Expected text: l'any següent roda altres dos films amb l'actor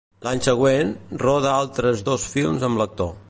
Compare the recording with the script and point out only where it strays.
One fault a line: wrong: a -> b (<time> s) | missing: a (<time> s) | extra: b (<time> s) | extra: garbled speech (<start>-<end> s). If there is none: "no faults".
no faults